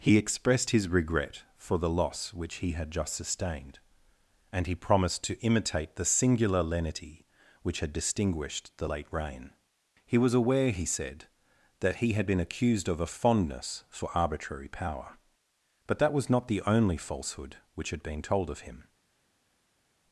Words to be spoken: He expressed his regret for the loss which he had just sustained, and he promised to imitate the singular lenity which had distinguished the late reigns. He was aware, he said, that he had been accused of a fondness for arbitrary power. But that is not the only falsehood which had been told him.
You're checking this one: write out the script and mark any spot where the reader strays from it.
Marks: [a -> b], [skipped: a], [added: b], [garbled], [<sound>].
He expressed his regret for the loss which he had just sustained, and he promised to imitate the singular lenity which had distinguished the late [reigns. -> reign] He was aware, he said, that he had been accused of a fondness for arbitrary power. But that [is -> was] not the only falsehood which had been told [added: of] him.